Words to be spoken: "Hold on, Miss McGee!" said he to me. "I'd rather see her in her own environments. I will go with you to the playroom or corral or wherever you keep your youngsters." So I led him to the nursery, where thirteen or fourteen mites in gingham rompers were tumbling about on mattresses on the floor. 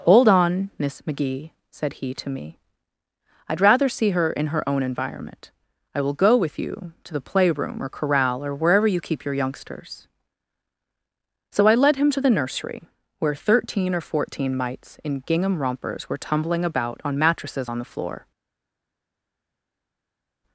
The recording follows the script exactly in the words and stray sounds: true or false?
false